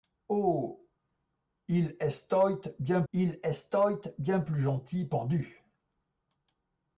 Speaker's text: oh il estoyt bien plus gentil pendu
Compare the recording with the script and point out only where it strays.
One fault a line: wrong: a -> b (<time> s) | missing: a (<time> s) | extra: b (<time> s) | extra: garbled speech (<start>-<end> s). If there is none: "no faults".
extra: il estoyt bien (3.1 s)